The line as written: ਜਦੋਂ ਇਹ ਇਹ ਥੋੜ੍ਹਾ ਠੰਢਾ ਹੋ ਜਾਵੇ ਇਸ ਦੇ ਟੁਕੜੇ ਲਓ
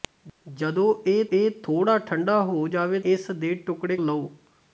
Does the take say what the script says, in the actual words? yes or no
yes